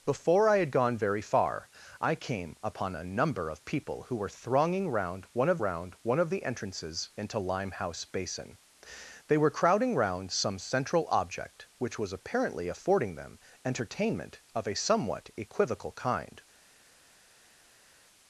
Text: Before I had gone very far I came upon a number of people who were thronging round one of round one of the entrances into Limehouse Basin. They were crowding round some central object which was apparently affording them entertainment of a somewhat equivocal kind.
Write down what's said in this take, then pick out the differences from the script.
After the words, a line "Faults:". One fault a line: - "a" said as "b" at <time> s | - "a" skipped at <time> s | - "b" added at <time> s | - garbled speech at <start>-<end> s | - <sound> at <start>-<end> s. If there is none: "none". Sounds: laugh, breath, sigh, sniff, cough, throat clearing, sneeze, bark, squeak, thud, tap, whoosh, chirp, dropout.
Before I had gone very far I came upon a number of people who were thronging round one of round one of the entrances into Limehouse Basin. They were crowding round some central object which was apparently affording them entertainment of a somewhat equivocal kind.
Faults:
none